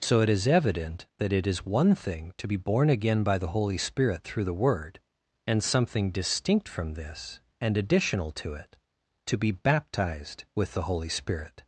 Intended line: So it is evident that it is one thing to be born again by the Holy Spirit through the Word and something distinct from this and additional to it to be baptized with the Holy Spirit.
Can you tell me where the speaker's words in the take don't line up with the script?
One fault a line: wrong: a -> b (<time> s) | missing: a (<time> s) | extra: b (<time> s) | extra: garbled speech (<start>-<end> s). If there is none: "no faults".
no faults